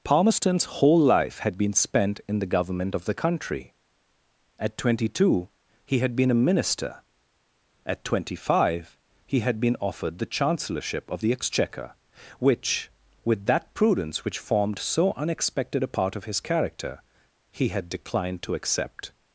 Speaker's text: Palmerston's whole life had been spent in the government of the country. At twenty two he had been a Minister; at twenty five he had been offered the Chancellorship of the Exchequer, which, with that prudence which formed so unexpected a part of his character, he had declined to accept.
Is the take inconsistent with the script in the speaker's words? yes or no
no